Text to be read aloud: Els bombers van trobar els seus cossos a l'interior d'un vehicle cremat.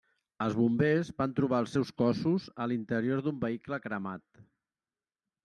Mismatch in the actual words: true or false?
false